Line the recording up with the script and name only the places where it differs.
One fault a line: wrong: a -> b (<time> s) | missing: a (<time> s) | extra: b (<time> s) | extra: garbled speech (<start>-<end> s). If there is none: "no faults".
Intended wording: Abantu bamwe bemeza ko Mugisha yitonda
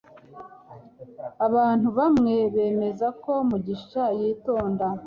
no faults